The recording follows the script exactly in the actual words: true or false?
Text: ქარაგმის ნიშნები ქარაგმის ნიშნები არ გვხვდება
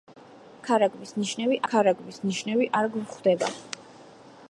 true